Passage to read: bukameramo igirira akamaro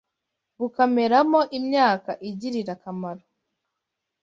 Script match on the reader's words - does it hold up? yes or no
no